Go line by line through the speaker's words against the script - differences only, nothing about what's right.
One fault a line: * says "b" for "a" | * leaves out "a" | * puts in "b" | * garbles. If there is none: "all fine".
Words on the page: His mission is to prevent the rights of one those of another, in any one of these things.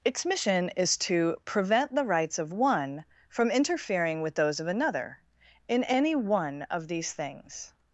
* says "Its" for "His"
* puts in "from interfering with"